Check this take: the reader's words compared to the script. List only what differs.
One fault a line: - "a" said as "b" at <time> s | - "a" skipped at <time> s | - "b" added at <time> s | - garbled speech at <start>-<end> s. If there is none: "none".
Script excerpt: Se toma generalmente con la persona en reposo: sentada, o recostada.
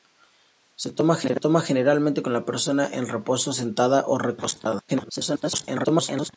- garbled speech at 4.9-6.3 s